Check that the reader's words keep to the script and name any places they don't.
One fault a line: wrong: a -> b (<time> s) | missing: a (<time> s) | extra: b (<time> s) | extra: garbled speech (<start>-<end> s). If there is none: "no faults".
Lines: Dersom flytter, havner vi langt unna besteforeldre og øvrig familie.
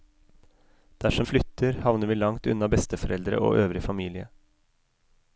no faults